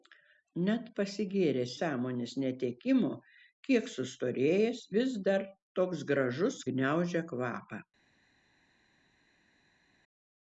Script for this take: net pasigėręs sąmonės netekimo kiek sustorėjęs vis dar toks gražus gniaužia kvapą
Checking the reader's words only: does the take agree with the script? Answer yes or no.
yes